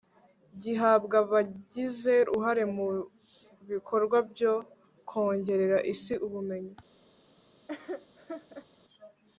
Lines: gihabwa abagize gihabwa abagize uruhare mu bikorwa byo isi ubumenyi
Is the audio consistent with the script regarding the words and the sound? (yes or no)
no